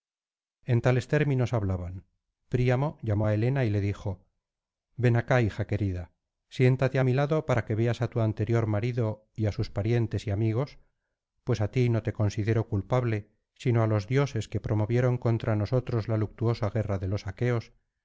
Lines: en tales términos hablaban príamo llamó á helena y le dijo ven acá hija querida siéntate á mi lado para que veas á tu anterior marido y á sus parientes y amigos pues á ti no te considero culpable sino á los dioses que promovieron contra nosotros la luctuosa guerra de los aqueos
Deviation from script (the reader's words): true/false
false